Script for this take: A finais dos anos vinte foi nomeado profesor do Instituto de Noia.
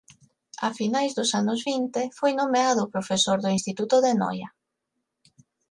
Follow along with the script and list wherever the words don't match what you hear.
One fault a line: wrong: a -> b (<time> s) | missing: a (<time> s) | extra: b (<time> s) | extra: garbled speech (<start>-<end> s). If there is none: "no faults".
no faults